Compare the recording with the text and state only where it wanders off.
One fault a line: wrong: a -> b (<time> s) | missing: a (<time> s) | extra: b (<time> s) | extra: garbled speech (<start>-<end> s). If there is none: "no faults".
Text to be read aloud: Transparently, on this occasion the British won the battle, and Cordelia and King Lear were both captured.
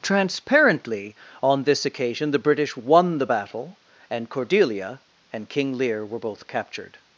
no faults